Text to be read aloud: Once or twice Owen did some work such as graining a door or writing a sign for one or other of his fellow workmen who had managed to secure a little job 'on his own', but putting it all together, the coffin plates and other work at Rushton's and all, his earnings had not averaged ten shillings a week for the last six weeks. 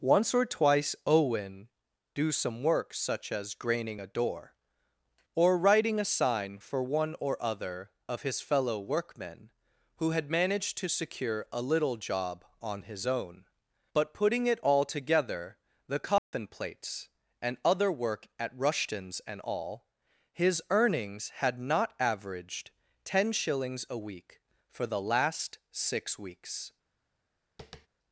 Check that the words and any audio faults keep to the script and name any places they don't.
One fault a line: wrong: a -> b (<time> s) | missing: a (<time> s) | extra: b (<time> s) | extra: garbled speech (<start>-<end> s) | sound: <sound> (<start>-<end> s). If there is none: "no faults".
wrong: did -> do (2.1 s)
sound: dropout (16.2-16.3 s)
sound: tap (27.6-27.9 s)